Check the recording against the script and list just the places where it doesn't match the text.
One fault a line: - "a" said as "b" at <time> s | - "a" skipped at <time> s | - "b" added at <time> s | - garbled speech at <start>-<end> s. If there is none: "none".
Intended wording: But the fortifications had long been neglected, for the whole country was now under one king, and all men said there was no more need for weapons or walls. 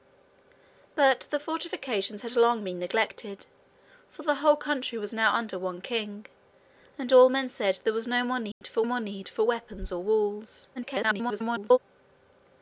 - "more need for" added at 8.8 s
- garbled speech at 10.7-11.8 s